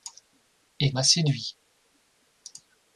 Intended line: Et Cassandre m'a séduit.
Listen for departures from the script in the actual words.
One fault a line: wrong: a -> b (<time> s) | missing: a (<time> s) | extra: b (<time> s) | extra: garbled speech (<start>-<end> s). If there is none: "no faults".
missing: Cassandre (0.9 s)